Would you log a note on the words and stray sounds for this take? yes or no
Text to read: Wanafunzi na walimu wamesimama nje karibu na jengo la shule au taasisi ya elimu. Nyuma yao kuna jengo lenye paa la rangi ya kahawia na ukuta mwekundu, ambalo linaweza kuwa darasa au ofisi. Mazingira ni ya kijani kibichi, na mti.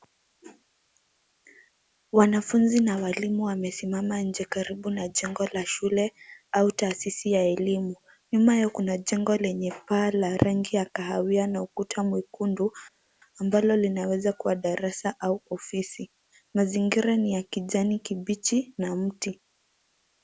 no